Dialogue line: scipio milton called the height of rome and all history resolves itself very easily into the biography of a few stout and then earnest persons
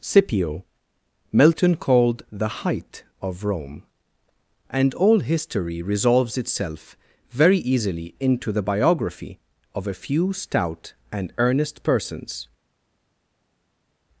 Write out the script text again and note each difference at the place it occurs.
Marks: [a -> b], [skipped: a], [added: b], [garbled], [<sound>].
scipio milton called the height of rome and all history resolves itself very easily into the biography of a few stout and [skipped: then] earnest persons